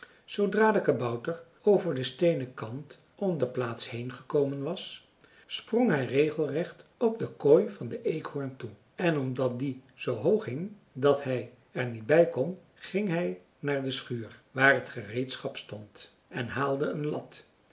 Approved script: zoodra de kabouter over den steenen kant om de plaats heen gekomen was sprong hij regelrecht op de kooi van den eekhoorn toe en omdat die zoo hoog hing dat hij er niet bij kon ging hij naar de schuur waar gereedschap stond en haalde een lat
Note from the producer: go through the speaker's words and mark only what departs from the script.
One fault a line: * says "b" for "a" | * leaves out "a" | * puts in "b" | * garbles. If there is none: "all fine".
* puts in "het"